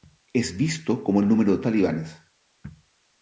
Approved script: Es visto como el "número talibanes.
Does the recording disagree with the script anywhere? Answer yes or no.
no